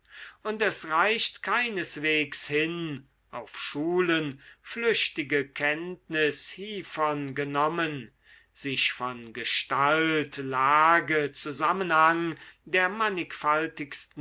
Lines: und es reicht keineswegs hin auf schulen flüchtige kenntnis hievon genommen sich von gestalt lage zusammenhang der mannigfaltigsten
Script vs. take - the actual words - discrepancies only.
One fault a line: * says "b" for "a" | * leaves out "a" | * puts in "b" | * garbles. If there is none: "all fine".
all fine